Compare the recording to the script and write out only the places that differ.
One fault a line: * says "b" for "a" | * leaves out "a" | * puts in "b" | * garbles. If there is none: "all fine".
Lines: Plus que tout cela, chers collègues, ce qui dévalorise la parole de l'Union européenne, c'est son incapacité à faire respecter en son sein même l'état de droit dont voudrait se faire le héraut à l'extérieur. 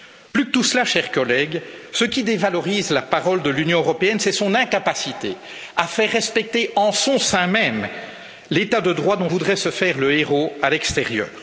all fine